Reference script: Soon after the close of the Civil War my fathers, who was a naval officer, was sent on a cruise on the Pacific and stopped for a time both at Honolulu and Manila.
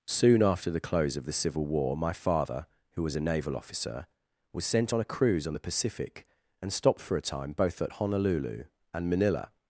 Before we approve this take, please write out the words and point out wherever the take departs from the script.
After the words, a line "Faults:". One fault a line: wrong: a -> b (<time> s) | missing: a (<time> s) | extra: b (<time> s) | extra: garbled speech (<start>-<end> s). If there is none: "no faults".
Soon after the close of the Civil War my father, who was a naval officer, was sent on a cruise on the Pacific and stopped for a time both at Honolulu and Manila.
Faults:
wrong: fathers -> father (2.1 s)